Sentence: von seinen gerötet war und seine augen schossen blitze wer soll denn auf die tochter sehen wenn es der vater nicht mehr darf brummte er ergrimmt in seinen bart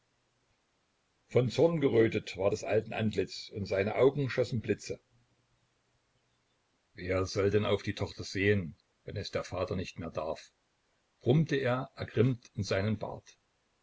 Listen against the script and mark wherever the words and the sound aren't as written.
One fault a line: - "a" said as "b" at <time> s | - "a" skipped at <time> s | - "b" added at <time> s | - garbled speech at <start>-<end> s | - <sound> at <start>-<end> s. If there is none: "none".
- "seinen" said as "zorn" at 1.5 s
- "des alten antlitz" added at 2.5 s